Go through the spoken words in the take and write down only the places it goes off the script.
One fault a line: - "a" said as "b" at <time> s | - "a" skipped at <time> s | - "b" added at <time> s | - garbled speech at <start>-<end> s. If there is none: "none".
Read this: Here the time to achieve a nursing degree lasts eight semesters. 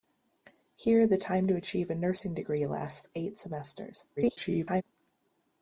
- garbled speech at 4.2-4.8 s